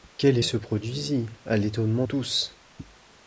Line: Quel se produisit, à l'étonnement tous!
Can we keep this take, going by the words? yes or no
yes